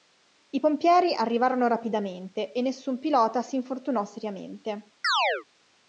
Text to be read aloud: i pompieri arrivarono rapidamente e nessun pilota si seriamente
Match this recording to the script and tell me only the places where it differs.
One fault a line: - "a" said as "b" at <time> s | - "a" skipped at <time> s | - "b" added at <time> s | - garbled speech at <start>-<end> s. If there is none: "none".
- "infortunò" added at 3.6 s